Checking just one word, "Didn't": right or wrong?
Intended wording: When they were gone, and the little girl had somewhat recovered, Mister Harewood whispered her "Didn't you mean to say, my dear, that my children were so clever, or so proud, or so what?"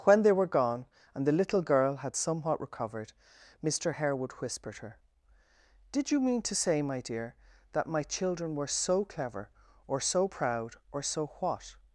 wrong